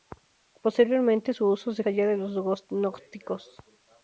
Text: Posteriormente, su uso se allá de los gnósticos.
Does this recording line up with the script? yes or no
yes